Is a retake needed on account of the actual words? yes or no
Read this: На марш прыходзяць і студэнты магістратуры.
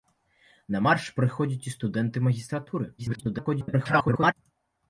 yes